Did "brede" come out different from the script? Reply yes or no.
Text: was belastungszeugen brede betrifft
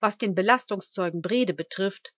no